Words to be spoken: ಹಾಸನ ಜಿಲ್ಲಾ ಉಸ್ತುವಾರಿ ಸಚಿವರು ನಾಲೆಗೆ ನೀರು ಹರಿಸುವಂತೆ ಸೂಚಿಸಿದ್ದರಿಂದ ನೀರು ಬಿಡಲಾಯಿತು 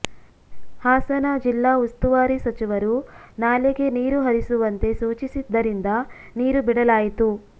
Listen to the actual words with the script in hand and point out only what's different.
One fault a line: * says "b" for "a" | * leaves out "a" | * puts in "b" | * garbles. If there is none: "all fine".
all fine